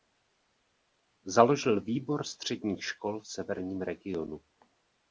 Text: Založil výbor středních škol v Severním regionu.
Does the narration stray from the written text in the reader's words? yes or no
no